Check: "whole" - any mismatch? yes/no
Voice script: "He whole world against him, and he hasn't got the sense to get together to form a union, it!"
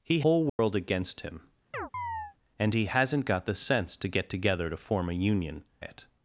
no